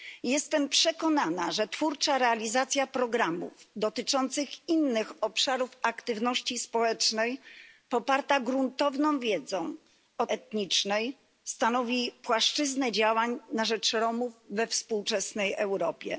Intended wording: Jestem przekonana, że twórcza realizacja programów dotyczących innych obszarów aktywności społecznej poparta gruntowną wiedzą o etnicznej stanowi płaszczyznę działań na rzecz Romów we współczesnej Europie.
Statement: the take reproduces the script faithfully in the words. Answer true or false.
true